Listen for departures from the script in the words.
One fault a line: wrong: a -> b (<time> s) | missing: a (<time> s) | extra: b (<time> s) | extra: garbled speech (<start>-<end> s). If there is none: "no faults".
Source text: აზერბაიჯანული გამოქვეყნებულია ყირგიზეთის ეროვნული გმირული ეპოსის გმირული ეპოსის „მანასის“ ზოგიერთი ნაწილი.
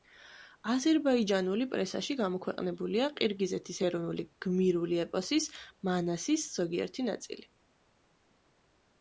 extra: პრესაში (1.7 s)
missing: გმირული ეპოსის (5.5 s)